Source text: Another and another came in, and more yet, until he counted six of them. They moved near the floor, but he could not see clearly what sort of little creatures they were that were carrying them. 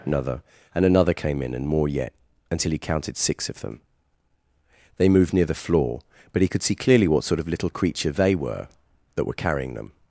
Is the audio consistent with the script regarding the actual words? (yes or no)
no